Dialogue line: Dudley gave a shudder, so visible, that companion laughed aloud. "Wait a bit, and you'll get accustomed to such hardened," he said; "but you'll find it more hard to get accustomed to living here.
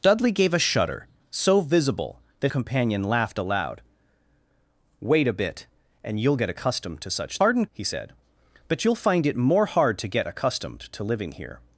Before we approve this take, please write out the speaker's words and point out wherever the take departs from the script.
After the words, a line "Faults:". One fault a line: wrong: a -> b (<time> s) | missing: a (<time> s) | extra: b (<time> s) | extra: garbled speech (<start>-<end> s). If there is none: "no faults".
Dudley gave a shudder, so visible, that companion laughed aloud. "Wait a bit, and you'll get accustomed to such hardened," he said; "but you'll find it more hard to get accustomed to living here.
Faults:
no faults